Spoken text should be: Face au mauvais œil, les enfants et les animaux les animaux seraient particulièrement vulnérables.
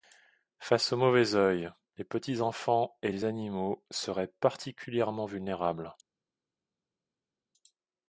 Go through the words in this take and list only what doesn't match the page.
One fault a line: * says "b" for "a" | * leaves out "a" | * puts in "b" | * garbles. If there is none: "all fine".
* puts in "petits"
* leaves out "les animaux"